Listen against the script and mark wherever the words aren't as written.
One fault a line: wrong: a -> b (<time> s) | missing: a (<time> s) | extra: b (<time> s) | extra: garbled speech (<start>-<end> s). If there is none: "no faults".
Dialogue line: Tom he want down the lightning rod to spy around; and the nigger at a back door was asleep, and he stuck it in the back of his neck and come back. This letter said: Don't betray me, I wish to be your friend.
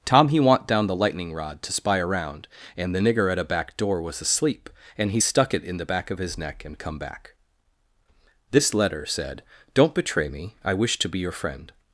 no faults